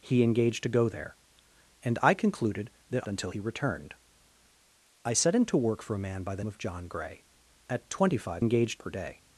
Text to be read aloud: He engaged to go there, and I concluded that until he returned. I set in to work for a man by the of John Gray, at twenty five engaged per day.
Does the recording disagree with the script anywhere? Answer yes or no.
no